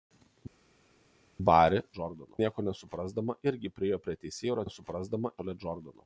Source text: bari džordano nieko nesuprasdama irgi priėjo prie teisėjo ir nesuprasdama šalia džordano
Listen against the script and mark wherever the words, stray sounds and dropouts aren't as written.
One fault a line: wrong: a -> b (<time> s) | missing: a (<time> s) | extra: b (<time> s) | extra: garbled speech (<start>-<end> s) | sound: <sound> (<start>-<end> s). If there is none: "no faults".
no faults